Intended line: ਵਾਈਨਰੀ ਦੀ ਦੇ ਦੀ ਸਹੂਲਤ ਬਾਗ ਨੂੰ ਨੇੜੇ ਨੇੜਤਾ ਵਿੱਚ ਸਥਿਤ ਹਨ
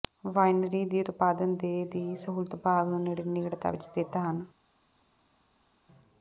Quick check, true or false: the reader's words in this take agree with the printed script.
false